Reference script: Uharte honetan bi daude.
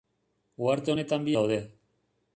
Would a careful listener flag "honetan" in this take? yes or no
no